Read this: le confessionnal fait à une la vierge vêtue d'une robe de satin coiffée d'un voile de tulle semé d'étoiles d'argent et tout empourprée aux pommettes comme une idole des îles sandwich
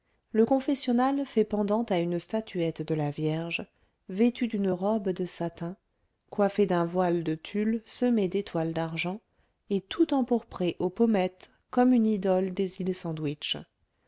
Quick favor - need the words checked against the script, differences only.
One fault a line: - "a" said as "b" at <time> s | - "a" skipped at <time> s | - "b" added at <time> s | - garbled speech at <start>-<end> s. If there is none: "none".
- "pendant" added at 1.4 s
- "statuette de" added at 2.2 s